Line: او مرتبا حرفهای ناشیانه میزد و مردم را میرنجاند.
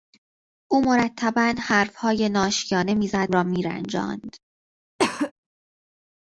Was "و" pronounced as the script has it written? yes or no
no